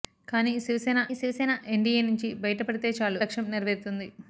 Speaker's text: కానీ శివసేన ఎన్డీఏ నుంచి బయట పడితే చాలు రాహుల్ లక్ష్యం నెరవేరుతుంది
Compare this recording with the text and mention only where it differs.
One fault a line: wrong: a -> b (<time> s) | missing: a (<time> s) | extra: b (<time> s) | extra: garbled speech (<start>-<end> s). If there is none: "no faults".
extra: శివసేన (1.1 s)
missing: రాహుల్ (3.2 s)